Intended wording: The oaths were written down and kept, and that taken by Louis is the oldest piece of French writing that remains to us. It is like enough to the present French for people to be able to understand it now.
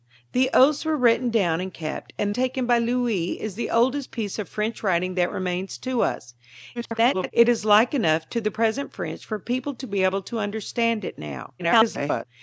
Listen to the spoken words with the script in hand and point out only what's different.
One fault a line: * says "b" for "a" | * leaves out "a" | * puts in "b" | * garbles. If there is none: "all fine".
* leaves out "that"
* garbles
* garbles